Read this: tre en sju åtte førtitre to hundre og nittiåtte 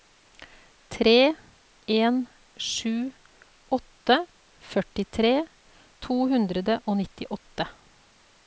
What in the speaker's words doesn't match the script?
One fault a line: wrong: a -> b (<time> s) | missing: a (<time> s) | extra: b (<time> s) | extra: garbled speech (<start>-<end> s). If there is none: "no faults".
no faults